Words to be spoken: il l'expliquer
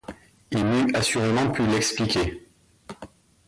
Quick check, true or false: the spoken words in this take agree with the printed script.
false